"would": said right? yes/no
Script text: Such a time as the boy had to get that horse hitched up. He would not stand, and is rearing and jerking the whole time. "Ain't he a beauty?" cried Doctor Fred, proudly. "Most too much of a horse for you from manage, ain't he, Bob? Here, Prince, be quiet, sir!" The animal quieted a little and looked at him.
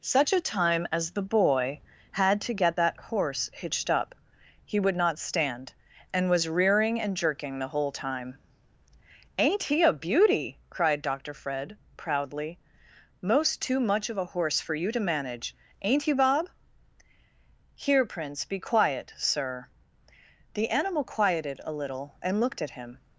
yes